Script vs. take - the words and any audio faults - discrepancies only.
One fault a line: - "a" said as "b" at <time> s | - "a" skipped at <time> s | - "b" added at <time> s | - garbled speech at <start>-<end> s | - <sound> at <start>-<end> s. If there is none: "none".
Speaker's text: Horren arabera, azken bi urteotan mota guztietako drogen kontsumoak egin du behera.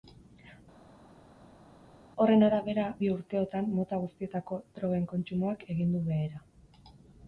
- "azken" skipped at 2.9 s